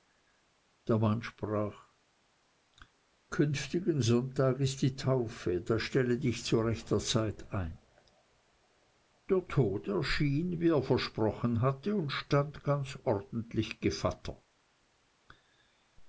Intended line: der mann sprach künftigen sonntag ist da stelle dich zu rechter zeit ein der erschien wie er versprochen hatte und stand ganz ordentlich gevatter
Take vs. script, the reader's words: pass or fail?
fail